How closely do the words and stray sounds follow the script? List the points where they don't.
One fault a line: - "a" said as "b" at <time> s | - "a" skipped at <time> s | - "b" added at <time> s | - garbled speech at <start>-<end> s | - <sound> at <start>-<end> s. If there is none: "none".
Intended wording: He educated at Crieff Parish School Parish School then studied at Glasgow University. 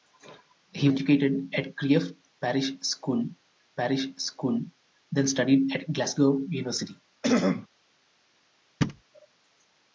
- throat clearing at 7.2-7.7 s
- thud at 8.8-9.0 s